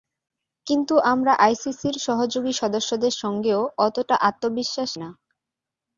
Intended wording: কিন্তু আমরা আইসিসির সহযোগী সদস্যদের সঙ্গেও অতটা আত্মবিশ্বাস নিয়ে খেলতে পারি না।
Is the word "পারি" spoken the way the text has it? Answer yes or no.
no